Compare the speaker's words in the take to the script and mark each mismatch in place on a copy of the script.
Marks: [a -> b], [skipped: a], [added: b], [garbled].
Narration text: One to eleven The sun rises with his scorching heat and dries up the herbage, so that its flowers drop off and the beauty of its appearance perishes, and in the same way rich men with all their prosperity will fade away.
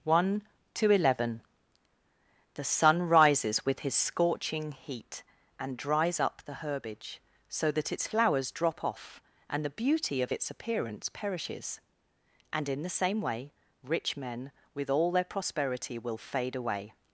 One to eleven The sun rises with his scorching heat and dries up the herbage, so that its flowers drop off and the beauty of its appearance perishes, and in the same way rich men with all their prosperity will fade away.